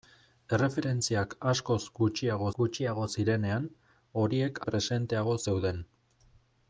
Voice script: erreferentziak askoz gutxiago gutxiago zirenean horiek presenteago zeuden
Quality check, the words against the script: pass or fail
pass